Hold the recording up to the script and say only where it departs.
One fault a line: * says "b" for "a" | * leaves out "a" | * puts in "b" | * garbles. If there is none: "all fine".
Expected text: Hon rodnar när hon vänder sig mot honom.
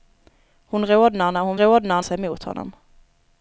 * says "rodnar" for "vänder"